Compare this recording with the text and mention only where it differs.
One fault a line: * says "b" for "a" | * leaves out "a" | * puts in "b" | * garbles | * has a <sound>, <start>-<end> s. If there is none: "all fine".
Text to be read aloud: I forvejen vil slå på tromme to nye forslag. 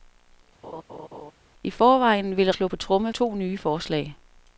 * has a laugh, 0.6-1.3 s